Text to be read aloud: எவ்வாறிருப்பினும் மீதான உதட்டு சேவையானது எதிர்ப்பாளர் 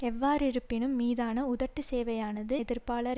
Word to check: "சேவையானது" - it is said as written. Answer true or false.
true